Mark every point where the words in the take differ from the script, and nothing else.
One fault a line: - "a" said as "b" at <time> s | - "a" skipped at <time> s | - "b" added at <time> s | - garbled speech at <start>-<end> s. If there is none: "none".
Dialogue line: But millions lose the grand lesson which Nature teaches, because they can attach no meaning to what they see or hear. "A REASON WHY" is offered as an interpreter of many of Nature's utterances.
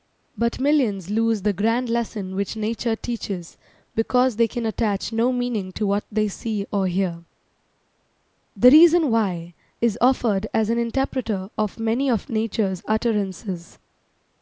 - "A" said as "THE" at 8.6 s